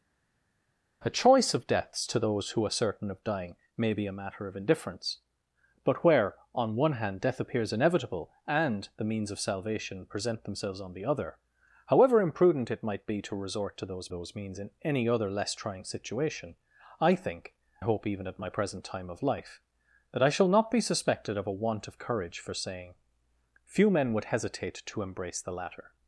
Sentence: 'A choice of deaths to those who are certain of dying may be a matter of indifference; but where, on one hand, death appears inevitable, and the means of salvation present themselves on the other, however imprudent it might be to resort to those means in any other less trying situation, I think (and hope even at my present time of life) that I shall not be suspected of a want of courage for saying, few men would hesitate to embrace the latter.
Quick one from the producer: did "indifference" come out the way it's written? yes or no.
yes